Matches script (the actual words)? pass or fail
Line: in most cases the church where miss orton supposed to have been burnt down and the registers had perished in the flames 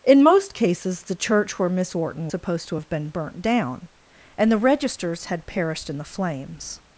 pass